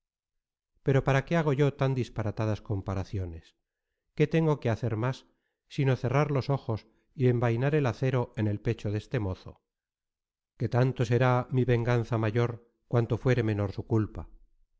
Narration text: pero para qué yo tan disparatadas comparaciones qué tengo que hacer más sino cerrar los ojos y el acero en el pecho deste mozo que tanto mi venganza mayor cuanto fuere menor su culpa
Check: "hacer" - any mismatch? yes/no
no